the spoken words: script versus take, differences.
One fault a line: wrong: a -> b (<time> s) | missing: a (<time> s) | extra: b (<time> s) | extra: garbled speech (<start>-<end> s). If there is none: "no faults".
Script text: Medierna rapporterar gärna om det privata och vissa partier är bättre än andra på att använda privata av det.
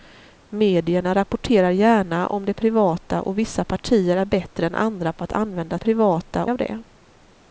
no faults